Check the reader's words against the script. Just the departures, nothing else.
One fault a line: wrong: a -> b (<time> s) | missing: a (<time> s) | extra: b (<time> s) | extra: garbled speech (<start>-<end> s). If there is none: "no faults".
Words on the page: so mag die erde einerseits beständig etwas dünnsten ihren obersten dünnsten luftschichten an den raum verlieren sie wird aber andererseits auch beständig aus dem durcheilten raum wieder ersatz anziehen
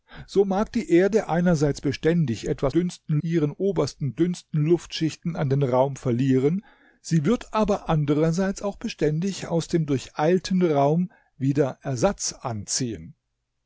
no faults